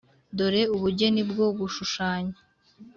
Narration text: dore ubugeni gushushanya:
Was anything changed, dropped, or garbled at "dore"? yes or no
no